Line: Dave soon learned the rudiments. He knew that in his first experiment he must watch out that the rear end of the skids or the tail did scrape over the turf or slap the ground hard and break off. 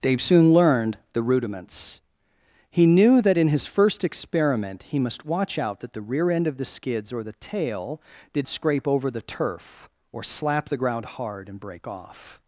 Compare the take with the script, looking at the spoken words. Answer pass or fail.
pass